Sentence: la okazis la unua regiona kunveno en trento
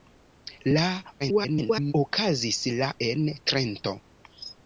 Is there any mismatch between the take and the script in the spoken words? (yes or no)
yes